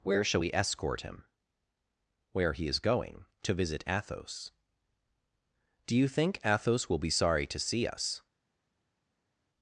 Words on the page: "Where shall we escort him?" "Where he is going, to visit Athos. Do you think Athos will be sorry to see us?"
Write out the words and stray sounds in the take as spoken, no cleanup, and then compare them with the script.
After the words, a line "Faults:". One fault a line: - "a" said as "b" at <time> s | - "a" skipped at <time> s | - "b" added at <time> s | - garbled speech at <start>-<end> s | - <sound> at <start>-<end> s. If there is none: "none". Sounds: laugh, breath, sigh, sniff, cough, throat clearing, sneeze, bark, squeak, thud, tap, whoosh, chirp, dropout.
"Where shall we escort him?" "Where he is going, to visit Athos. Do you think Athos will be sorry to see us?"
Faults:
none